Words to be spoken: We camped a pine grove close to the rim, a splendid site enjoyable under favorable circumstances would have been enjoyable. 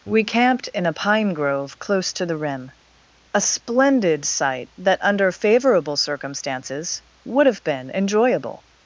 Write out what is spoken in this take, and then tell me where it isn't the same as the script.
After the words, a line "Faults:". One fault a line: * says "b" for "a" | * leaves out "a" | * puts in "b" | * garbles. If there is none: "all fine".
We camped in a pine grove close to the rim, a splendid site that under favorable circumstances would have been enjoyable.
Faults:
* puts in "in"
* says "that" for "enjoyable"